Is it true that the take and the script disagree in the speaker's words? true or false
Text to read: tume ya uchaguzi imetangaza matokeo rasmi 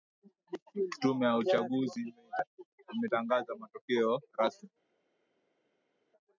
false